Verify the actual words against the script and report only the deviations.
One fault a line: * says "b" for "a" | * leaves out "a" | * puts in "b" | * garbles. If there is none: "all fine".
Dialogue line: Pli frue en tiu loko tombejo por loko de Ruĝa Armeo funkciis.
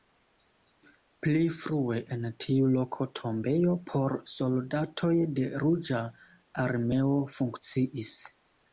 * says "soldatoj" for "loko"